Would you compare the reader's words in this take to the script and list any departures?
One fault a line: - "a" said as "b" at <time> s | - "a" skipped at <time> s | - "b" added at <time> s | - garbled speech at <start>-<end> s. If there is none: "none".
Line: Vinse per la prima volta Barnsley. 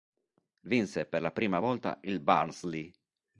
- "il" added at 2.0 s